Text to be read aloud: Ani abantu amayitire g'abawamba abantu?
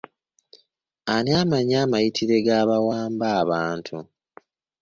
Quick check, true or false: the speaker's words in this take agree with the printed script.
false